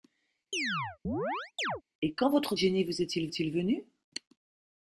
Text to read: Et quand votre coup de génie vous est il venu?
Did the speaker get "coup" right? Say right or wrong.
wrong